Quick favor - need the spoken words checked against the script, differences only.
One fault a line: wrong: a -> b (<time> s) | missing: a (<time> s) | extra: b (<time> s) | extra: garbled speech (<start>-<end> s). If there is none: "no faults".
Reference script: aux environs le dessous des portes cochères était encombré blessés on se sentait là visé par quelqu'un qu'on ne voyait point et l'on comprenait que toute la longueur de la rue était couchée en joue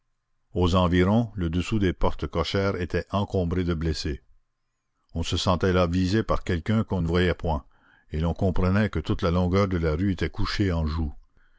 extra: de (3.6 s)